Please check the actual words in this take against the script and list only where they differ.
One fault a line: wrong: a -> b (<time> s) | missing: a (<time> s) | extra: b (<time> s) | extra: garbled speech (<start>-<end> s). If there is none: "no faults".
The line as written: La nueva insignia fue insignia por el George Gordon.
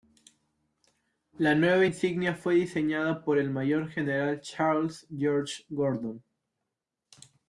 wrong: insignia -> diseñada (2.5 s)
extra: mayor general Charles (3.5 s)